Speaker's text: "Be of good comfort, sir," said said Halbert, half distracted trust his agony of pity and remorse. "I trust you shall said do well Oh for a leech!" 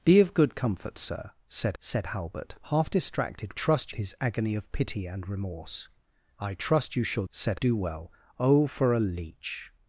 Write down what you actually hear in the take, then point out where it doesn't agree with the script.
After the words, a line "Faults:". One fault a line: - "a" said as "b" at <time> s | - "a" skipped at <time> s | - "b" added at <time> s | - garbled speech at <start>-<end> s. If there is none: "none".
"Be of good comfort, sir," said said Halbert, half distracted trust his agony of pity and remorse. "I trust you shall said do well Oh for a leech!"
Faults:
none